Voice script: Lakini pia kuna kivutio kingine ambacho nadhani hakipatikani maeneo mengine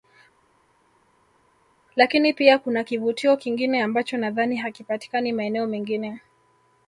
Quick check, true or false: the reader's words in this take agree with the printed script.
true